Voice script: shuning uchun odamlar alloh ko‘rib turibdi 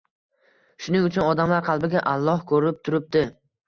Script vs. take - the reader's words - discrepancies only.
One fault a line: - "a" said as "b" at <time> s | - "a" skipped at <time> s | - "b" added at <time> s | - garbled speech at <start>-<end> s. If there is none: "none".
- "qalbiga" added at 1.7 s